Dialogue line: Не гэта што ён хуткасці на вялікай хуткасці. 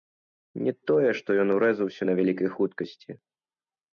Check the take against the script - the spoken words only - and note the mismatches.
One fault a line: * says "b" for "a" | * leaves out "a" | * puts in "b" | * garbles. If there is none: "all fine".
* says "тое" for "гэта"
* says "урэзаўся" for "хуткасці"